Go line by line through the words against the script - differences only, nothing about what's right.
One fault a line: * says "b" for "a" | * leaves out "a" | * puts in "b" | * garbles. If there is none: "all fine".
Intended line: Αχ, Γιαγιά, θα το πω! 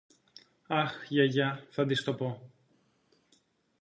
* puts in "της"